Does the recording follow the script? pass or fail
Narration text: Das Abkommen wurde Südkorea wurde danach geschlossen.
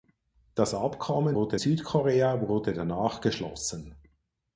pass